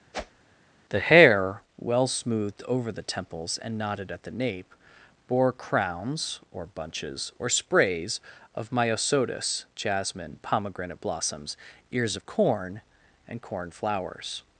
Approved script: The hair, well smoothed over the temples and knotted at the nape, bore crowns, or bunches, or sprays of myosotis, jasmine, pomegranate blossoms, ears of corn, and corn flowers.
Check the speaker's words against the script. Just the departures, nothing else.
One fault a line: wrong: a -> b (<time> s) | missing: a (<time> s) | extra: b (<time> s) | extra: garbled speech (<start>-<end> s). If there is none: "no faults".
no faults